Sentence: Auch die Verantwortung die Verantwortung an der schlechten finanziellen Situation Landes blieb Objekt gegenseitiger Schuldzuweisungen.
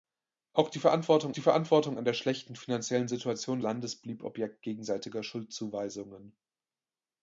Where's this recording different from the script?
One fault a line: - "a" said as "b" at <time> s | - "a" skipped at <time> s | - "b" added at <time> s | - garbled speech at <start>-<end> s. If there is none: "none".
none